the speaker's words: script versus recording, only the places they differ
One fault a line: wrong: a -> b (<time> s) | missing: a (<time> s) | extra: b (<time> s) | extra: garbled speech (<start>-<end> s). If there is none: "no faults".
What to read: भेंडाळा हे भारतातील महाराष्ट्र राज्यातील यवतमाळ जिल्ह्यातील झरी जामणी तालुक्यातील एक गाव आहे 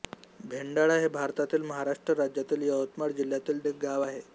missing: झरी जामणी तालुक्यातील (3.6 s)